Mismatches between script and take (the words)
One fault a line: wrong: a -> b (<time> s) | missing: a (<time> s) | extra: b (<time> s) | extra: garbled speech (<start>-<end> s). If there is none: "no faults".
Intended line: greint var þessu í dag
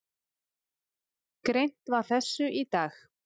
no faults